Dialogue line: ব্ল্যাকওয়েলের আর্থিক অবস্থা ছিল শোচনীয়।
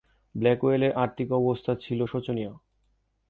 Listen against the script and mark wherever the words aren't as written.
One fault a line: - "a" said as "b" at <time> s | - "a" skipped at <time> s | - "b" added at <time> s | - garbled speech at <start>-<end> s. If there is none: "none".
none